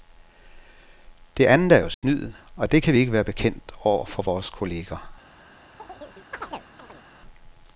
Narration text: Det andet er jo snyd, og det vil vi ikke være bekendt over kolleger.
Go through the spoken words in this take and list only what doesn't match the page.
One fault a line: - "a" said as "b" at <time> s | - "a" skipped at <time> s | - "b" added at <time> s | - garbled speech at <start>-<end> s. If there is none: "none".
- "vil" said as "kan" at 2.8 s
- "for vores" added at 4.0 s